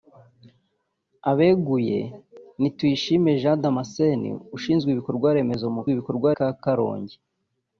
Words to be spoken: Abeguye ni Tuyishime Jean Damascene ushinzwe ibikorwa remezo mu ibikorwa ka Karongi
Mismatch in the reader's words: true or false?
false